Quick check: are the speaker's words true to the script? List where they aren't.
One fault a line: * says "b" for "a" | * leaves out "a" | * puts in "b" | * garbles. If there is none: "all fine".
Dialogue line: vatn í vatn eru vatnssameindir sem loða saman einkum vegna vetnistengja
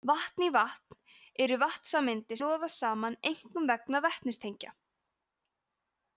* leaves out "sem"